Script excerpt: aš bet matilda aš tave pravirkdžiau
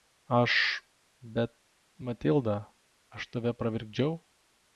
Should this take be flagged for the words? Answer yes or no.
no